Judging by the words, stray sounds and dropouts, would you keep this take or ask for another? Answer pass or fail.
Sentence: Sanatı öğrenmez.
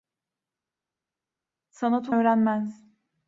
pass